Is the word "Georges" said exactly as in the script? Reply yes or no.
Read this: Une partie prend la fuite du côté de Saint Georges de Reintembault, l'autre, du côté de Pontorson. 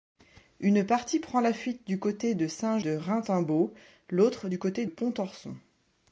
no